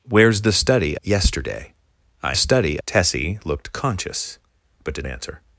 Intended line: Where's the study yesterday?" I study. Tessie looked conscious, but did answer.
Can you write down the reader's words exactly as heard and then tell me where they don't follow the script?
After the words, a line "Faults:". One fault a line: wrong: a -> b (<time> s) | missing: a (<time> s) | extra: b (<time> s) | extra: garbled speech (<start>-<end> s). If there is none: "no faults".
Where's the study yesterday?" I study. Tessie looked conscious, but did answer.
Faults:
no faults